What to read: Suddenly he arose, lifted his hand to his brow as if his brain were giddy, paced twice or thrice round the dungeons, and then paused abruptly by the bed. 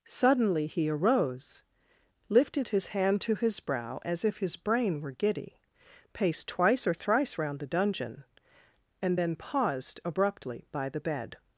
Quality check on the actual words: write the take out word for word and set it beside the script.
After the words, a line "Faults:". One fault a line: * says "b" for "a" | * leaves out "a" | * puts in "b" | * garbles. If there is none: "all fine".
Suddenly he arose, lifted his hand to his brow as if his brain were giddy, paced twice or thrice round the dungeon, and then paused abruptly by the bed.
Faults:
* says "dungeon" for "dungeons"